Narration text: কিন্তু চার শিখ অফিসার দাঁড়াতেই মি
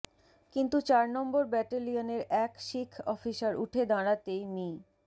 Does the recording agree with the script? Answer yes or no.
no